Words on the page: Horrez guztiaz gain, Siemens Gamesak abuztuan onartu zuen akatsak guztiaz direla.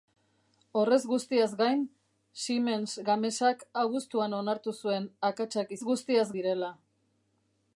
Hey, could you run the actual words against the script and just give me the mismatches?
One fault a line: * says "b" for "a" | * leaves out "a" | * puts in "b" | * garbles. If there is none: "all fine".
all fine